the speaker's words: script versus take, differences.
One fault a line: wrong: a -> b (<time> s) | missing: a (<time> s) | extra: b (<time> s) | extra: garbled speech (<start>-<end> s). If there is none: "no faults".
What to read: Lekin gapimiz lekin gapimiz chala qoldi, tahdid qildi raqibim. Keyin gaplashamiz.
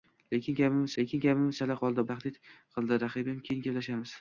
no faults